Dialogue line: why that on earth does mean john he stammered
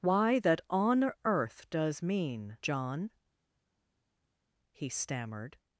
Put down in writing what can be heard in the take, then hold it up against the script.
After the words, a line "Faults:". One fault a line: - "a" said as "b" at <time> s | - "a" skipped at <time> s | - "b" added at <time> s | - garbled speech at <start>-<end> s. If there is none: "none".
why that on earth does mean john he stammered
Faults:
none